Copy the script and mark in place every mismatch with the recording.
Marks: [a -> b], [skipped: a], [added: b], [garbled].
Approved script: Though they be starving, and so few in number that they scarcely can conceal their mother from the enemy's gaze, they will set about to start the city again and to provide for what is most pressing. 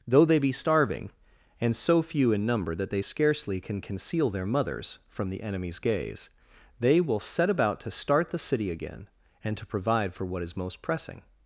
Though they be starving, and so few in number that they scarcely can conceal their [mother -> mothers] from the enemy's gaze, they will set about to start the city again and to provide for what is most pressing.